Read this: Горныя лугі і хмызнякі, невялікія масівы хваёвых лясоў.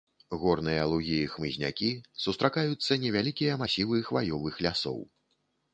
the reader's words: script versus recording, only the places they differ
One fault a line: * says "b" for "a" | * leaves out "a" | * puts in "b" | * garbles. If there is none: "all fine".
* puts in "сустракаюцца"